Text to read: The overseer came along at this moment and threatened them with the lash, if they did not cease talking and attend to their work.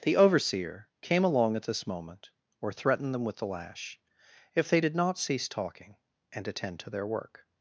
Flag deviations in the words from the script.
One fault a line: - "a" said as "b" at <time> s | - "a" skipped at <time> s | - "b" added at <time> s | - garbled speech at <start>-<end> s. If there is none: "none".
- "and" said as "or" at 2.6 s